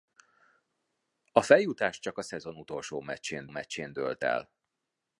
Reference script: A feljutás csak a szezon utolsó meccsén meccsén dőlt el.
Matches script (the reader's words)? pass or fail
pass